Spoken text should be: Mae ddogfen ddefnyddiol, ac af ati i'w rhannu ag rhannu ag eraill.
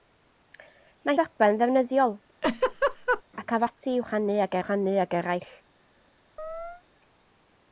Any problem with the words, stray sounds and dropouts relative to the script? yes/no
yes